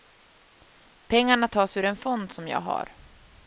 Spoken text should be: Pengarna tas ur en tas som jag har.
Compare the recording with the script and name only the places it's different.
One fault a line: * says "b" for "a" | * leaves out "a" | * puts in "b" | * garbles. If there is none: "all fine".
* says "fond" for "tas"